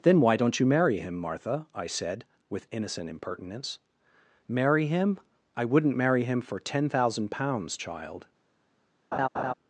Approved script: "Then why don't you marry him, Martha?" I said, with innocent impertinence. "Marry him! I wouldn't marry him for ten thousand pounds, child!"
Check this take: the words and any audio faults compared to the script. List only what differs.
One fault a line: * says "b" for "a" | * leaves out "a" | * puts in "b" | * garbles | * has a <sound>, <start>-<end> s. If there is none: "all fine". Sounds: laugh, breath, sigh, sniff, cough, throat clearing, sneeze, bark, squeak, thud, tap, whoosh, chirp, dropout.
* has a laugh, 9.1-9.5 s